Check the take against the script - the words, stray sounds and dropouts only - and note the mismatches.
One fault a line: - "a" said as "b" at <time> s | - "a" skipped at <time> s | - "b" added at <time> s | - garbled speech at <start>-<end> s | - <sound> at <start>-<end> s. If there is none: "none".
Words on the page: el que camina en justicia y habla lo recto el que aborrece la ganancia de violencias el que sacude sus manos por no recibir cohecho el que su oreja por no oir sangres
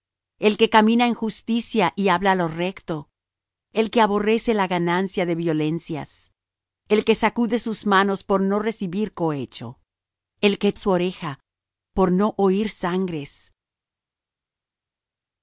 none